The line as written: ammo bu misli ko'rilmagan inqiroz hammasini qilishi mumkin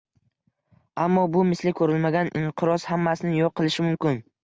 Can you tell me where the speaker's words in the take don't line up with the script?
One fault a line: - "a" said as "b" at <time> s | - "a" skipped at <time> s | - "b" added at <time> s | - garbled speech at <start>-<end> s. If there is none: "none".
- "yo'q" added at 3.5 s